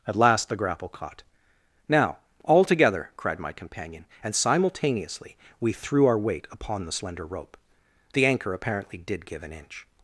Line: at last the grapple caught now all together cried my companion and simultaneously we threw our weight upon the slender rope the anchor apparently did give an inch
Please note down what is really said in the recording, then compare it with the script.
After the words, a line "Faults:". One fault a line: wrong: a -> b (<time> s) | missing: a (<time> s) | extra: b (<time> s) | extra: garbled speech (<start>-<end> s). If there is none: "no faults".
at last the grapple caught now all together cried my companion and simultaneously we threw our weight upon the slender rope the anchor apparently did give an inch
Faults:
no faults